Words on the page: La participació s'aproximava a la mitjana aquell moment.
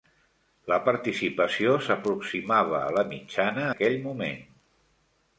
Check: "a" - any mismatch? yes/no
no